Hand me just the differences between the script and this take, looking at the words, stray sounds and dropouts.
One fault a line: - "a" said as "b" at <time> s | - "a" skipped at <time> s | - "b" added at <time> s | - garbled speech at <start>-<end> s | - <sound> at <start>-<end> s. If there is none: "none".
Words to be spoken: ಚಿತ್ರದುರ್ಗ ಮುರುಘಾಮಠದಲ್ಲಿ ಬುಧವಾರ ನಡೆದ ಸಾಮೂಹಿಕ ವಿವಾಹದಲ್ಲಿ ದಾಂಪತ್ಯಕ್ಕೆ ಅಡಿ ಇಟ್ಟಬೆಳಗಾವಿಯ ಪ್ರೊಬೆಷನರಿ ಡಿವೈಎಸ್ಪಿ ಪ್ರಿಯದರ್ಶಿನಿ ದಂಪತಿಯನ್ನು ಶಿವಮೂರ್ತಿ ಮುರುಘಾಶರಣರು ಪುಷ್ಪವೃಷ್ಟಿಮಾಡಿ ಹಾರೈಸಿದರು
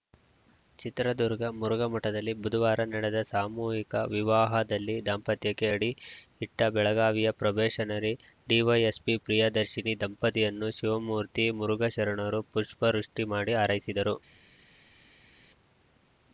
none